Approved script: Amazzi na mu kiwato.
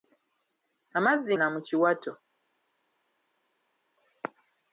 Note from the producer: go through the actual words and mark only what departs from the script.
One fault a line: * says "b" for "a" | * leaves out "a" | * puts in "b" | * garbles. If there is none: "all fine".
all fine